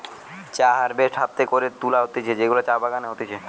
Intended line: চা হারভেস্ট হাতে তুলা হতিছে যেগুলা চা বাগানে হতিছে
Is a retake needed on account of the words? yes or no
yes